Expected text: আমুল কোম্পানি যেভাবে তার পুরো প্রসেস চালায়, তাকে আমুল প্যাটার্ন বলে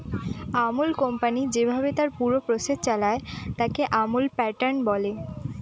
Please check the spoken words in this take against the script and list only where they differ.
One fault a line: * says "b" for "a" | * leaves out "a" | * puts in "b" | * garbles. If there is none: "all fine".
all fine